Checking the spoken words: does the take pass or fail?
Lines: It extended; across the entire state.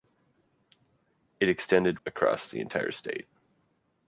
pass